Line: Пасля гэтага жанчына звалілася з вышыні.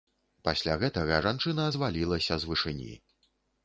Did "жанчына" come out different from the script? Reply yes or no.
no